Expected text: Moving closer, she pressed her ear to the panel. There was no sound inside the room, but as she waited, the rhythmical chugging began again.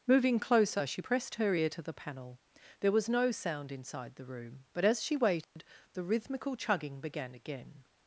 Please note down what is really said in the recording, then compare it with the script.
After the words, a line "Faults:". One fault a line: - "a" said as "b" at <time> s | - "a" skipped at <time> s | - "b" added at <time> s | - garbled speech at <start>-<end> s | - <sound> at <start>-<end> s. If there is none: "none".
Moving closer, she pressed her ear to the panel. There was no sound inside the room, but as she waited, the rhythmical chugging began again.
Faults:
- dropout at 5.4-5.6 s